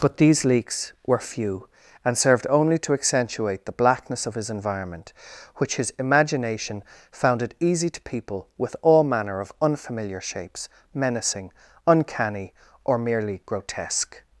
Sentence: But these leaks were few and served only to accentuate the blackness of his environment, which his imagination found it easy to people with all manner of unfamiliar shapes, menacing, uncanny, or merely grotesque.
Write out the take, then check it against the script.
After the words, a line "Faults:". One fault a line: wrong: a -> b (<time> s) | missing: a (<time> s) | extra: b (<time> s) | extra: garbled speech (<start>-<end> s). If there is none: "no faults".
But these leaks were few and served only to accentuate the blackness of his environment, which his imagination found it easy to people with all manner of unfamiliar shapes, menacing, uncanny, or merely grotesque.
Faults:
no faults